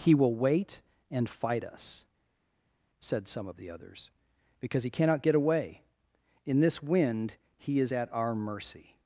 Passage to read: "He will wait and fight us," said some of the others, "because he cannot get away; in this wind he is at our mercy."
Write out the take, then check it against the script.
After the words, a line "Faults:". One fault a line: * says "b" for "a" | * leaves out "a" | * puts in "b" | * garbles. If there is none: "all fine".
"He will wait and fight us," said some of the others, "because he cannot get away; in this wind he is at our mercy."
Faults:
all fine